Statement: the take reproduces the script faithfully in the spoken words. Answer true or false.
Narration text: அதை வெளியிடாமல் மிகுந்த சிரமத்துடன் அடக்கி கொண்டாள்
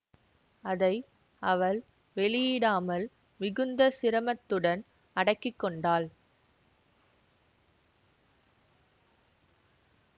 false